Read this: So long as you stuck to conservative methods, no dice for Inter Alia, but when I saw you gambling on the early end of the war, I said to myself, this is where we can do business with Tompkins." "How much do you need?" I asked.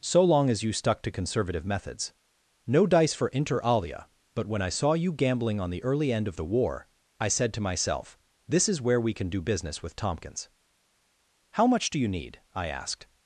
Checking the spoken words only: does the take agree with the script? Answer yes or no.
yes